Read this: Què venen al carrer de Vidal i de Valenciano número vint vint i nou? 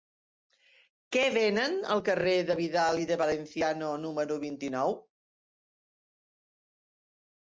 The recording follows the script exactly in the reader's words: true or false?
false